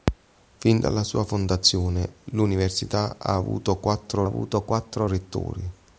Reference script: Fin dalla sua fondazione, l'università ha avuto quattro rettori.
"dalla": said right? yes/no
yes